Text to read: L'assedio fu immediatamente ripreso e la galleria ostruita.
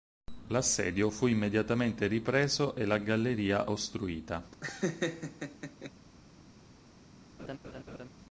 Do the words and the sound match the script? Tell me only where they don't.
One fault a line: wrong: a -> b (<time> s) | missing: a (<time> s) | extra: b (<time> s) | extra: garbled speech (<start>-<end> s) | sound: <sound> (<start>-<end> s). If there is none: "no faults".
sound: laugh (4.5-5.9 s)
sound: laugh (7.4-8.1 s)